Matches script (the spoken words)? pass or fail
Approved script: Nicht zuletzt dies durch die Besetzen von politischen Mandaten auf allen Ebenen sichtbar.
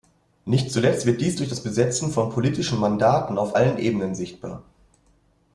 fail